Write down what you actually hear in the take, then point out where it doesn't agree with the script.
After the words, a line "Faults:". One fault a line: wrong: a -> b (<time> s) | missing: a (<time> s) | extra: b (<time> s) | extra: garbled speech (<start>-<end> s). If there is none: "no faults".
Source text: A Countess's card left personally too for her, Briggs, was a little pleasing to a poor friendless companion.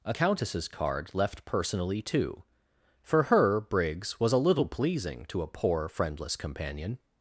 A Countess's card left personally too for her, Briggs, was a little pleasing to a poor friendless companion.
Faults:
no faults